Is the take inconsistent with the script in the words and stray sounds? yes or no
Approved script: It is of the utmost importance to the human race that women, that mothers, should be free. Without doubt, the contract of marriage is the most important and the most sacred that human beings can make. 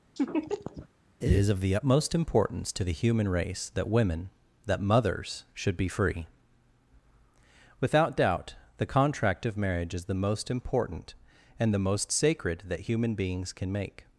yes